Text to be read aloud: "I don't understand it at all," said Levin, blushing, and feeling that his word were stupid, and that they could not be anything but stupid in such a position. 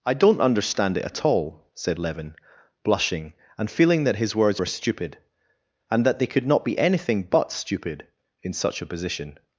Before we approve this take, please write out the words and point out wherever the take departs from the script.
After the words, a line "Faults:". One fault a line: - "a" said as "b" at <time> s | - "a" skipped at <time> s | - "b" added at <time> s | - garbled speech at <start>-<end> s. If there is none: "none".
"I don't understand it at all," said Levin, blushing, and feeling that his words were stupid, and that they could not be anything but stupid in such a position.
Faults:
- "word" said as "words" at 4.3 s